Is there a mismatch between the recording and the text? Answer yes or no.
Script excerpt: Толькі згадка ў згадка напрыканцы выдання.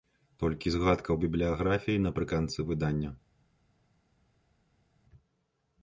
yes